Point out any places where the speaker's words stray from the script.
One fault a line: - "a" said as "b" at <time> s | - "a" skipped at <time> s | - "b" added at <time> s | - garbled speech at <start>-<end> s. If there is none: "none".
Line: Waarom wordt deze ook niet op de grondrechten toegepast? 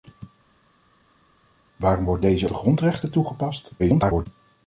- "ook niet op" skipped at 2.5 s
- garbled speech at 3.8-4.3 s